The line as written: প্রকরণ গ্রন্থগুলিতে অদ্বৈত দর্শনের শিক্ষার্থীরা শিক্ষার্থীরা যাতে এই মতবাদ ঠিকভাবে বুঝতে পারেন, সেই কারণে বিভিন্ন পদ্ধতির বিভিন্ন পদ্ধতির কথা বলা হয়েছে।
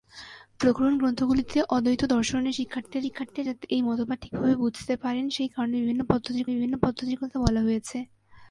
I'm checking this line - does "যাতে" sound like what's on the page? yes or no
yes